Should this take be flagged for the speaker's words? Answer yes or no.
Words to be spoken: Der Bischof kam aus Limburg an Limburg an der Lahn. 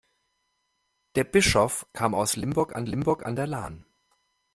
no